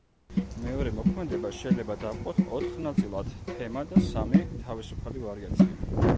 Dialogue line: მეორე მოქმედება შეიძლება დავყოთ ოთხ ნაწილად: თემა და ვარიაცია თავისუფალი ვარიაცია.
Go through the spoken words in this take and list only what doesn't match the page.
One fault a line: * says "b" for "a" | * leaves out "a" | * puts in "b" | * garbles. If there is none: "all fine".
* says "სამი" for "ვარიაცია"